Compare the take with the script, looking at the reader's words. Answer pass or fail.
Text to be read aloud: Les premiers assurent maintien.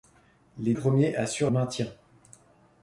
pass